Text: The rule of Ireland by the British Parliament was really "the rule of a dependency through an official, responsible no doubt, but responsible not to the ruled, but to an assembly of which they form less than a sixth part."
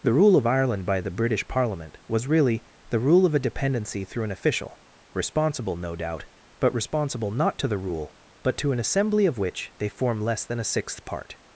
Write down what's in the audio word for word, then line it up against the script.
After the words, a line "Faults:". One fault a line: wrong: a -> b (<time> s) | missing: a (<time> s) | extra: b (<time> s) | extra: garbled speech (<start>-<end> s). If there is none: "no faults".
The rule of Ireland by the British Parliament was really "the rule of a dependency through an official, responsible no doubt, but responsible not to the rule, but to an assembly of which they form less than a sixth part."
Faults:
wrong: ruled -> rule (7.8 s)